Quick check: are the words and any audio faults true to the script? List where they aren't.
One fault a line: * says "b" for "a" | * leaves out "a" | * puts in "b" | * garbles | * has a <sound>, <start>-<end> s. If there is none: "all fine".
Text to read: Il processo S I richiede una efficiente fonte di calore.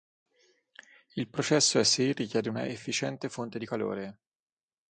all fine